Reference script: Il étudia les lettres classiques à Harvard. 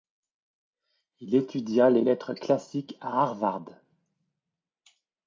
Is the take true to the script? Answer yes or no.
yes